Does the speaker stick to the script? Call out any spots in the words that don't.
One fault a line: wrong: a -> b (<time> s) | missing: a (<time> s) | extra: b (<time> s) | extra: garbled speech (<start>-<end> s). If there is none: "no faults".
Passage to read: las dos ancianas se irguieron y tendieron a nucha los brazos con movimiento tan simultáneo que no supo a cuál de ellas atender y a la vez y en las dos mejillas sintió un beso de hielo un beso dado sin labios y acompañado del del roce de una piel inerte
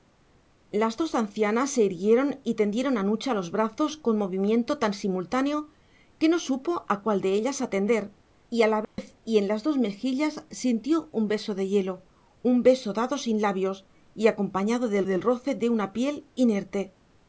no faults